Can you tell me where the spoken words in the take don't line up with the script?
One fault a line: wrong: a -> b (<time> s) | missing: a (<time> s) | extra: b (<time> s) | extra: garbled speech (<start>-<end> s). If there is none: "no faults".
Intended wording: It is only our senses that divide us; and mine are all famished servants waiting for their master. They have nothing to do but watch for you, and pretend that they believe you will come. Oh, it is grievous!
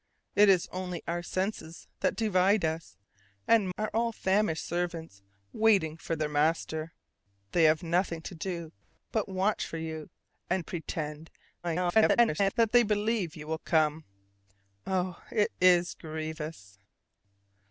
missing: mine (3.7 s)
extra: garbled speech (11.6-12.5 s)